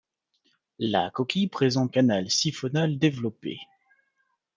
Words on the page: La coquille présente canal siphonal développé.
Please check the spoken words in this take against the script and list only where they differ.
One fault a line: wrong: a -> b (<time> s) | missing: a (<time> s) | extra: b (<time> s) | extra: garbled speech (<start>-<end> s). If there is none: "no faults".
no faults